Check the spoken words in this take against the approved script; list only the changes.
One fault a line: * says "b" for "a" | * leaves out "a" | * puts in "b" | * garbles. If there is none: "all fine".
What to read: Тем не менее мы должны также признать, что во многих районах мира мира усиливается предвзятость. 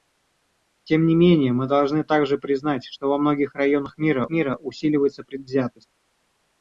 all fine